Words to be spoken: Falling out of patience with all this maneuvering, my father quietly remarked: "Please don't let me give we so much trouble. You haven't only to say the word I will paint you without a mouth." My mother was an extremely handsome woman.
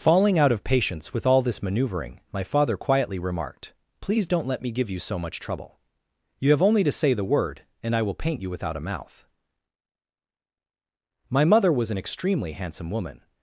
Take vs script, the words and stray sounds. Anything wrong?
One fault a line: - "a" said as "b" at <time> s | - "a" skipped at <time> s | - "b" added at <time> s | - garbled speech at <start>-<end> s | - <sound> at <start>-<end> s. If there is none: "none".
- "we" said as "you" at 4.9 s
- "haven't" said as "have" at 6.5 s
- "and" added at 7.8 s